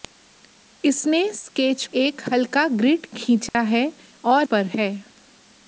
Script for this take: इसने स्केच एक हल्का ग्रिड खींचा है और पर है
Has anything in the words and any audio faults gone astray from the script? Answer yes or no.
yes